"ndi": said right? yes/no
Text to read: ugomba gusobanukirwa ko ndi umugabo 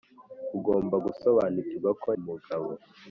no